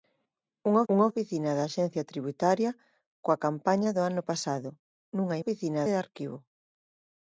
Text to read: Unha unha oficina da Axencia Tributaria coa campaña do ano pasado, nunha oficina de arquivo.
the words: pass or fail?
pass